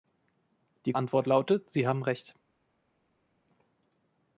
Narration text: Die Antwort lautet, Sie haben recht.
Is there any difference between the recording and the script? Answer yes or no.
no